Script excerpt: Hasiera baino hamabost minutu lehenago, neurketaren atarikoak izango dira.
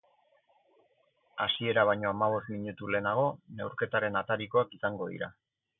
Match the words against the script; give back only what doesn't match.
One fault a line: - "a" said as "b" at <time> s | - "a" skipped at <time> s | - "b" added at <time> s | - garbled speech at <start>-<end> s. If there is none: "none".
none